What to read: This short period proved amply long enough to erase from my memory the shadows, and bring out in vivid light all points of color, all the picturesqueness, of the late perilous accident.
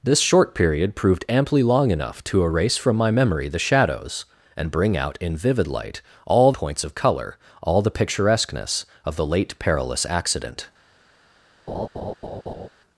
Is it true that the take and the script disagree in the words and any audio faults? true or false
true